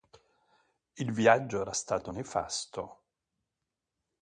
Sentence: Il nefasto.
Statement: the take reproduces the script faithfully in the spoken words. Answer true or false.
false